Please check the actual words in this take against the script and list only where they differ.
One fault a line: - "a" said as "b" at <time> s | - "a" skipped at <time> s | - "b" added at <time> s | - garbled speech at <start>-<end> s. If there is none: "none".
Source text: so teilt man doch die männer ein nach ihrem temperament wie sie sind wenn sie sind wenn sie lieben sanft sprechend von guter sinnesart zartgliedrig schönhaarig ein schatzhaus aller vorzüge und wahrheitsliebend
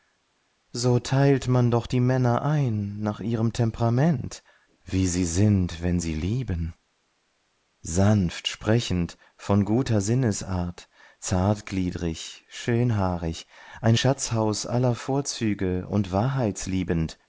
- "sind wenn sie" skipped at 6.1 s